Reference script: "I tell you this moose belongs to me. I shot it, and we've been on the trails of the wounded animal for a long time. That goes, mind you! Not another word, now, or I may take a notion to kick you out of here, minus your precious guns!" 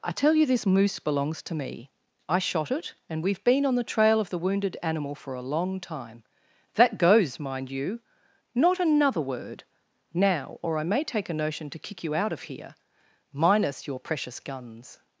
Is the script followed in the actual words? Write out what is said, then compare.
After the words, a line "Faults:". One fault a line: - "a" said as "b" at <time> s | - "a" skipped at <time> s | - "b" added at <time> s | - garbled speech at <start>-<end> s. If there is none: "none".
"I tell you this moose belongs to me. I shot it, and we've been on the trail of the wounded animal for a long time. That goes, mind you! Not another word, now, or I may take a notion to kick you out of here, minus your precious guns!"
Faults:
- "trails" said as "trail" at 3.8 s